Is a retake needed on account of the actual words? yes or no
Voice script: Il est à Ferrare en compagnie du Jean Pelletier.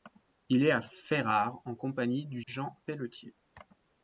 no